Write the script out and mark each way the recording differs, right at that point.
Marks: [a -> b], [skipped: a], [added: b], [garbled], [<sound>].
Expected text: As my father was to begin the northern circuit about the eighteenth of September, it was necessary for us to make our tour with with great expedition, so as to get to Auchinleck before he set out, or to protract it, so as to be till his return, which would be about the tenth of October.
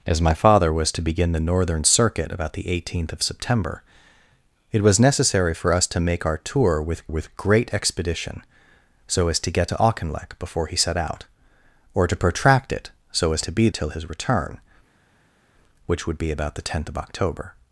As my father was to begin the northern circuit about the eighteenth of September, it was necessary for us to make our tour with with great expedition, so as to get to Auchinleck before he set out, or to protract it, so as to be till his return, which would be about the tenth of October.